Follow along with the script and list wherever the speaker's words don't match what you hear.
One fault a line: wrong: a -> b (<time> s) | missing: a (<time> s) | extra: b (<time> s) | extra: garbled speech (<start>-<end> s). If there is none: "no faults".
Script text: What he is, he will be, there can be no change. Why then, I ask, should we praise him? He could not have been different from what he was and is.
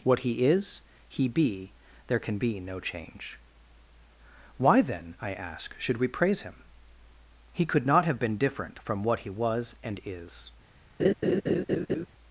missing: will (1.3 s)